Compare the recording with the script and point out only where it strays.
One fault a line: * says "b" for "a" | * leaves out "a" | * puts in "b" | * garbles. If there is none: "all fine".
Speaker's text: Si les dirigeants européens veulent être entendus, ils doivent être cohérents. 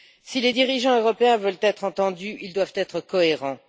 all fine